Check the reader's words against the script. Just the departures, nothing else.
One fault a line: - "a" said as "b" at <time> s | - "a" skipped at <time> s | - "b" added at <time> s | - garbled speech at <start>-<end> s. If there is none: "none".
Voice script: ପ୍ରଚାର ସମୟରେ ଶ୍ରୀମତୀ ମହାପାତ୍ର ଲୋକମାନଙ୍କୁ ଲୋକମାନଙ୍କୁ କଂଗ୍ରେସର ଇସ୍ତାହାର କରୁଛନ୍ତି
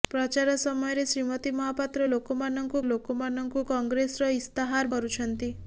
none